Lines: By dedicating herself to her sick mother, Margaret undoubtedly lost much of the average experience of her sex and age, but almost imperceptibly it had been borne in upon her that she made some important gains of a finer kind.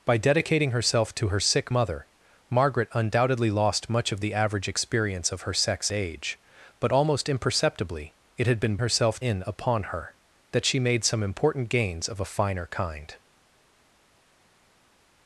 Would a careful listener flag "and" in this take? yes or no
yes